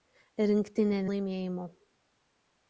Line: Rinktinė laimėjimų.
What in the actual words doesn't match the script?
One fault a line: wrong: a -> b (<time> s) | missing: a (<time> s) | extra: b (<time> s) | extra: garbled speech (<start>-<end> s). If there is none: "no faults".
no faults